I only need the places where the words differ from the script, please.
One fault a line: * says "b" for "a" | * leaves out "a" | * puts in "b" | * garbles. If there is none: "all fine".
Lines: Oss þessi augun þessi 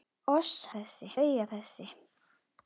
all fine